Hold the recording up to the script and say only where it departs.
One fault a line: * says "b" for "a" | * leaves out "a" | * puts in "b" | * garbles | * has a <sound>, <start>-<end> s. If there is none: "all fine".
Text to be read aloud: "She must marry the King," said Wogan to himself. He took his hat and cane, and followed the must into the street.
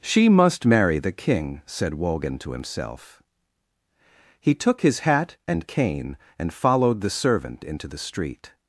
* says "servant" for "must"